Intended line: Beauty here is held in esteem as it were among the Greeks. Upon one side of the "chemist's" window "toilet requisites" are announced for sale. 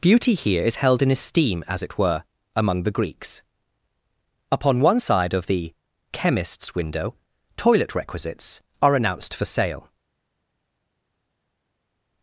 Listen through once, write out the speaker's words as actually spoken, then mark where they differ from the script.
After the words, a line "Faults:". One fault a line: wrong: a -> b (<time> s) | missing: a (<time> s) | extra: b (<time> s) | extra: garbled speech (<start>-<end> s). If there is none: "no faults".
Beauty here is held in esteem as it were among the Greeks. Upon one side of the "chemist's" window "toilet requisites" are announced for sale.
Faults:
no faults